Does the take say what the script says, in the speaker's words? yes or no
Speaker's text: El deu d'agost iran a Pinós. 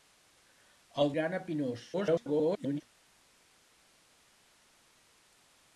no